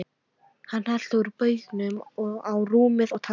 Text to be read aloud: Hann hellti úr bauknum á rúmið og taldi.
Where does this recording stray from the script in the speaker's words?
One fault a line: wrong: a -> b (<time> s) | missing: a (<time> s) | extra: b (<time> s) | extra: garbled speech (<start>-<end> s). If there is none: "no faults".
no faults